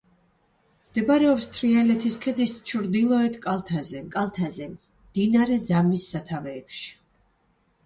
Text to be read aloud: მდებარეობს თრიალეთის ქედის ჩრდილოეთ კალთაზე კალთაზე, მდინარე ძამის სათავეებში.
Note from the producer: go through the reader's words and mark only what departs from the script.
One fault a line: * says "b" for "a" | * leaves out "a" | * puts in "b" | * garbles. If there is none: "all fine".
all fine